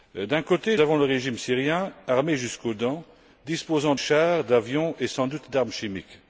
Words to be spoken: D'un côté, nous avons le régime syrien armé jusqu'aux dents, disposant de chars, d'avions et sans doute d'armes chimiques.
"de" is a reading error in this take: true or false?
true